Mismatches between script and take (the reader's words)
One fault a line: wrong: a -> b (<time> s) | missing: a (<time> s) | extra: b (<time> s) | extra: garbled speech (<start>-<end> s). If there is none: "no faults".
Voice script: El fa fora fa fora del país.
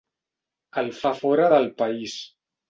missing: fa fora (1.5 s)